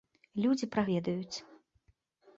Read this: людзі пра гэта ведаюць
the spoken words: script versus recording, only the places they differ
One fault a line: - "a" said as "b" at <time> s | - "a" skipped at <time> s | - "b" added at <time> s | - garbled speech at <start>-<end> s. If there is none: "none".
- "гэта" skipped at 0.8 s